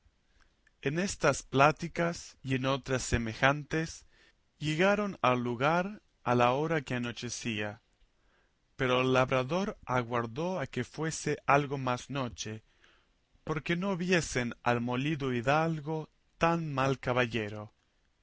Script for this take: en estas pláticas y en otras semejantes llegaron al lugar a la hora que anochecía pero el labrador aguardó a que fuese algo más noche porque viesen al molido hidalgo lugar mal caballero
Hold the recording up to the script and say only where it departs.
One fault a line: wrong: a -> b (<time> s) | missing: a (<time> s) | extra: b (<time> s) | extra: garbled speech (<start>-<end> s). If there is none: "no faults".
extra: no (13.8 s)
wrong: lugar -> tan (16.4 s)